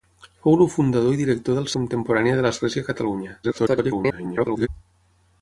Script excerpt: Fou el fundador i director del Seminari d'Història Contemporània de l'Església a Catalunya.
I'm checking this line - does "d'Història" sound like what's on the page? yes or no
no